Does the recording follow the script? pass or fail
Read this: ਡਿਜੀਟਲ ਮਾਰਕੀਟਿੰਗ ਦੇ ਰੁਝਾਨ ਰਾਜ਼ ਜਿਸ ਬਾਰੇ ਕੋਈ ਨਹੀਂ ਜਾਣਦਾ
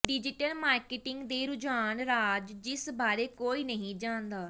pass